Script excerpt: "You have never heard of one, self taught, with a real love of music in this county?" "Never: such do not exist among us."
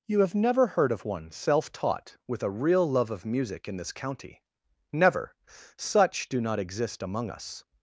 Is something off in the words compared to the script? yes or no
no